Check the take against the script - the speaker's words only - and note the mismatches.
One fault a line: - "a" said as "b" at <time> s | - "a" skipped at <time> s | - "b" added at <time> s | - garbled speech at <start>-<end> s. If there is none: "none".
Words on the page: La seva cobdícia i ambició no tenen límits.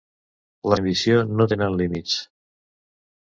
- "seva cobdícia" skipped at 0.8 s